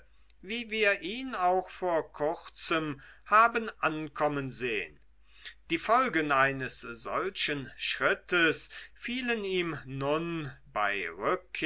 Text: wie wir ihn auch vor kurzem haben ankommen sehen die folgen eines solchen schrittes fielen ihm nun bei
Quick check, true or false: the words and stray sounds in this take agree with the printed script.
true